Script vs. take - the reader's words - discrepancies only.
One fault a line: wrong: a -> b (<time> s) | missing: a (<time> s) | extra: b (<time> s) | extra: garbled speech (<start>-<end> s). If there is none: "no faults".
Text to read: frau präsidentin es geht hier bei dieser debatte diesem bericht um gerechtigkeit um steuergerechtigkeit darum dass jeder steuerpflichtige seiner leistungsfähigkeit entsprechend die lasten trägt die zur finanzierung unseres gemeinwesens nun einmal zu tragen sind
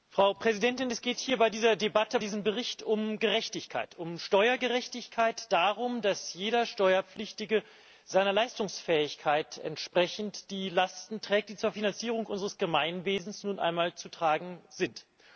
no faults